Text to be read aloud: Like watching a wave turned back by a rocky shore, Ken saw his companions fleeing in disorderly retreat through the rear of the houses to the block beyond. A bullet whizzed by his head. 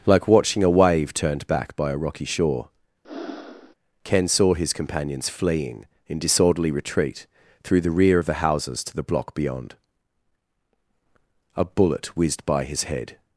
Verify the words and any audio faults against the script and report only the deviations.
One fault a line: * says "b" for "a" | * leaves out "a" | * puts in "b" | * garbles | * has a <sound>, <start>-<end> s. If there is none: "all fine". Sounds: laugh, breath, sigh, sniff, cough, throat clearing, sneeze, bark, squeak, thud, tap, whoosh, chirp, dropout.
* has a breath, 3.0-3.7 s